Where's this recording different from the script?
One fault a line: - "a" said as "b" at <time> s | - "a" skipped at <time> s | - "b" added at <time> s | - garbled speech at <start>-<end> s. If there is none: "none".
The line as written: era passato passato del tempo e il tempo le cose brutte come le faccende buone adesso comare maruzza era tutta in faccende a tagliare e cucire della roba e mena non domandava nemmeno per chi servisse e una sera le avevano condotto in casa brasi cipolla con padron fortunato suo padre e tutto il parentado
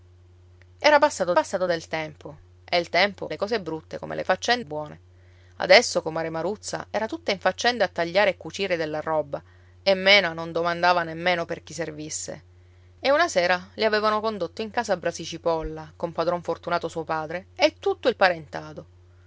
none